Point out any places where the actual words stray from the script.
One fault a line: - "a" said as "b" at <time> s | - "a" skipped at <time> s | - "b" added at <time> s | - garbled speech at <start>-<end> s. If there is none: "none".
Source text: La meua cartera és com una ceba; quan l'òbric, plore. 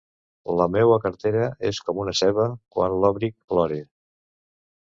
none